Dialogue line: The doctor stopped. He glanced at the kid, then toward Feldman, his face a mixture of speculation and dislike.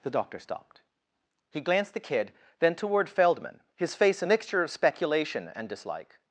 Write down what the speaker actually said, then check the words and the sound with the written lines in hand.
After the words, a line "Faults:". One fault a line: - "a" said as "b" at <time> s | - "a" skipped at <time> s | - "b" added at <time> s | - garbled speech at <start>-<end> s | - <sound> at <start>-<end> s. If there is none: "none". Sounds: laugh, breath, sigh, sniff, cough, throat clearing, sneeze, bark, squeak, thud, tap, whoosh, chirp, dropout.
The doctor stopped. He glanced the kid, then toward Feldman, his face a mixture of speculation and dislike.
Faults:
- "at" skipped at 1.9 s